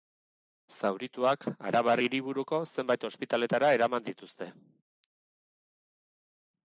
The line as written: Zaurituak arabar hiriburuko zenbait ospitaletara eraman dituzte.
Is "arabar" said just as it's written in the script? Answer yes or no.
yes